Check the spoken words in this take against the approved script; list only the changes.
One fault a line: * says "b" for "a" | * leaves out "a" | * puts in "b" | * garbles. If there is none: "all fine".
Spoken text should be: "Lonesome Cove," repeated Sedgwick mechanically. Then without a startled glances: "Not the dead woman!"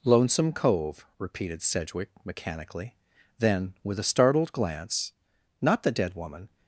* says "with" for "without"
* says "glance" for "glances"